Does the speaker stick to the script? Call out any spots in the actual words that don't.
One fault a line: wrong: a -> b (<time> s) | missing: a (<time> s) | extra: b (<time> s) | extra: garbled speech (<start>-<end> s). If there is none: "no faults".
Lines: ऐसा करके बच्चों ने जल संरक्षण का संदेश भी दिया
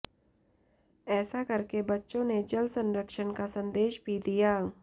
no faults